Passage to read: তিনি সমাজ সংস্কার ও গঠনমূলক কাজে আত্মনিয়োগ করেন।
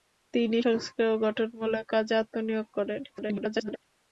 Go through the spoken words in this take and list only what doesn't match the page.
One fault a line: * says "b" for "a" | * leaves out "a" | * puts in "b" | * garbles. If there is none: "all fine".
* leaves out "সমাজ"
* garbles